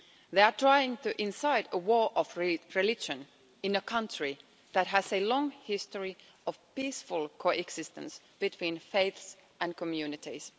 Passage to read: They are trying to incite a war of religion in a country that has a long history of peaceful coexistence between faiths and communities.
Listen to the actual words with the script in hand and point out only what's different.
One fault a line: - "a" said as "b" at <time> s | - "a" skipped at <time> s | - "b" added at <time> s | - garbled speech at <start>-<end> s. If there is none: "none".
none